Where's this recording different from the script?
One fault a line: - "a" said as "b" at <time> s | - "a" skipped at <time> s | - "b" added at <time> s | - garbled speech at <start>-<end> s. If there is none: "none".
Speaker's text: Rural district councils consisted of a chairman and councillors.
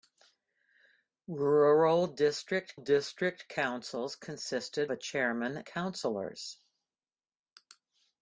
- "district" added at 2.8 s
- "of" skipped at 4.9 s
- "and" skipped at 5.6 s